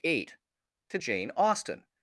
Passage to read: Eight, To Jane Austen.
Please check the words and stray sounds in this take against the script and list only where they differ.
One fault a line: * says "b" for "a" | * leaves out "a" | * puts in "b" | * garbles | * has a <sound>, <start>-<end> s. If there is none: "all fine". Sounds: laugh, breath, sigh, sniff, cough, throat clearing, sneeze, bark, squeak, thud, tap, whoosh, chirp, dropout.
all fine